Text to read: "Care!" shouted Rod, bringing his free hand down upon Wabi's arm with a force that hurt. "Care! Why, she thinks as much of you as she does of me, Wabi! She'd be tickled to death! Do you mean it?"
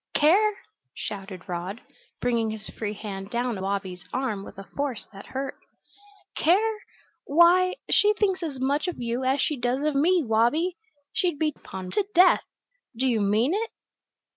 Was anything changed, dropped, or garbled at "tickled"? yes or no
yes